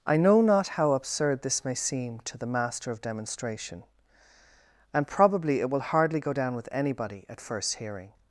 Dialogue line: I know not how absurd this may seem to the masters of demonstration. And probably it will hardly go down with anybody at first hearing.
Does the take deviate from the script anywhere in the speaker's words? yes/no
yes